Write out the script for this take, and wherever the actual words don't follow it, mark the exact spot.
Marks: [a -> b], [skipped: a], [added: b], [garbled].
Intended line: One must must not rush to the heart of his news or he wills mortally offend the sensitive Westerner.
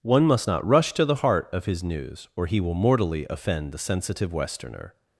One must [skipped: must] not rush to the heart of his news or he [wills -> will] mortally offend the sensitive Westerner.